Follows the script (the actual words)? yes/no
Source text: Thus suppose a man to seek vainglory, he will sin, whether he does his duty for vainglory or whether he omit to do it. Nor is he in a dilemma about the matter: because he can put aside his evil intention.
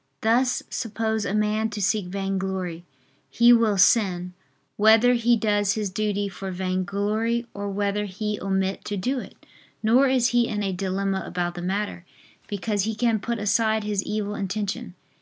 yes